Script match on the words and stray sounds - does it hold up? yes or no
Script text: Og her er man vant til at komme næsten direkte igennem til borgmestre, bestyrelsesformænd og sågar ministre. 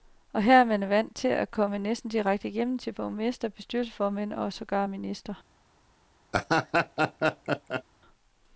no